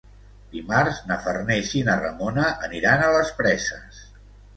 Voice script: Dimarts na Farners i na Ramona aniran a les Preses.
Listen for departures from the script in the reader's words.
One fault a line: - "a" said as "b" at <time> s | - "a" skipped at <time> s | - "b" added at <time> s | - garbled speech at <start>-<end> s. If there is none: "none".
none